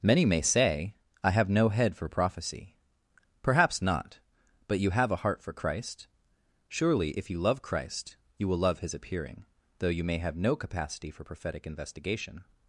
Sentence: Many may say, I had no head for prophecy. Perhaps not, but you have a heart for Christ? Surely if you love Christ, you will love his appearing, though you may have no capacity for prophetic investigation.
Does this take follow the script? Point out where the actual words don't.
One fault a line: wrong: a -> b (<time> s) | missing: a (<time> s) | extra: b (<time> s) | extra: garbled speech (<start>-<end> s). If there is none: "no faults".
wrong: had -> have (1.3 s)